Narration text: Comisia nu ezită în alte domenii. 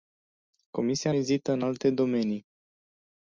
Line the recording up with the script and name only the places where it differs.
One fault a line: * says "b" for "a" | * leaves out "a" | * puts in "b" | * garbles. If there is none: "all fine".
* leaves out "nu"